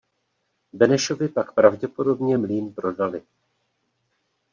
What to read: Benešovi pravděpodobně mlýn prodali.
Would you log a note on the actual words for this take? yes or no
yes